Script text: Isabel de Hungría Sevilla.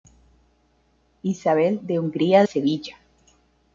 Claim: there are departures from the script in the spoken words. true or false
false